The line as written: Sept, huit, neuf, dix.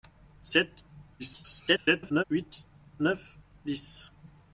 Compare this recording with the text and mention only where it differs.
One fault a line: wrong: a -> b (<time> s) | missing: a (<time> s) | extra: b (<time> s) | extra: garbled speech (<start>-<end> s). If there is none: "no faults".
extra: garbled speech (1.2-2.2 s)